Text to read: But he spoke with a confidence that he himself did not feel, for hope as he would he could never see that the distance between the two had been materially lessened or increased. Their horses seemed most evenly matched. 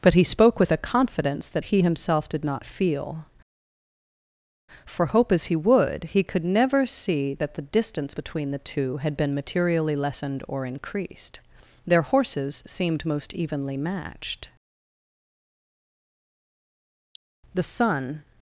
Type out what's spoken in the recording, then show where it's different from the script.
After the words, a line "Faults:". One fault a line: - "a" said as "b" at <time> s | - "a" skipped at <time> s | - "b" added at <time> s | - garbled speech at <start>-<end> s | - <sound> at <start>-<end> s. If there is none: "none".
But he spoke with a confidence that he himself did not feel, for hope as he would he could never see that the distance between the two had been materially lessened or increased. Their horses seemed most evenly matched. The sun
Faults:
- "The sun" added at 17.5 s